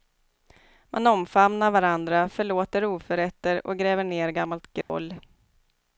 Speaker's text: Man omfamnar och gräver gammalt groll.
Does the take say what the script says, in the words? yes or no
no